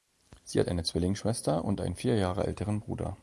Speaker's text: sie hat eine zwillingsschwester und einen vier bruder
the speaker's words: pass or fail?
fail